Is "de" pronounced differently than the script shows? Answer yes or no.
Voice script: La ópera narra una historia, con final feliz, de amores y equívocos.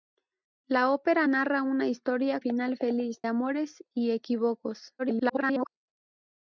yes